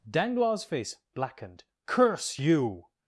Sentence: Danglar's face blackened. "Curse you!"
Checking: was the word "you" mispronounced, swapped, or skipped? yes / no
no